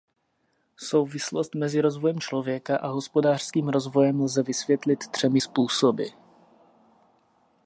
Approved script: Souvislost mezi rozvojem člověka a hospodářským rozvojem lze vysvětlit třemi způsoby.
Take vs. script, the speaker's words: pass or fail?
pass